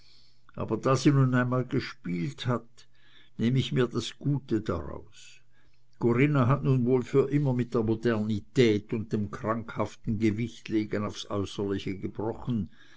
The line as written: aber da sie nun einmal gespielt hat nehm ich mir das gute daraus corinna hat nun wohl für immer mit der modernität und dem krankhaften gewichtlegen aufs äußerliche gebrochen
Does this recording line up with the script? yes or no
yes